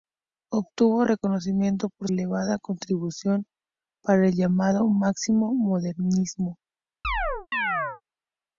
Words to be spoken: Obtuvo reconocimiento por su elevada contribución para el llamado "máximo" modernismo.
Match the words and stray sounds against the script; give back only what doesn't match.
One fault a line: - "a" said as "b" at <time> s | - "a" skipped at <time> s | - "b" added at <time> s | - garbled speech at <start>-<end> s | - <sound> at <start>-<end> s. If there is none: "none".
- "su" skipped at 2.1 s
- chirp at 7.0-8.0 s